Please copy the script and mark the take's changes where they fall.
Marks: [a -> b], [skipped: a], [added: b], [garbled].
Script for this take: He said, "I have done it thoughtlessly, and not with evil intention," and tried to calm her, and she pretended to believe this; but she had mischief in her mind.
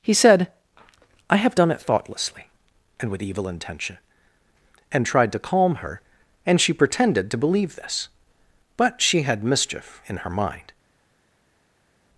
He said, "I have done it thoughtlessly, and [skipped: not] with evil intention," and tried to calm her, and she pretended to believe this; but she had mischief in her mind.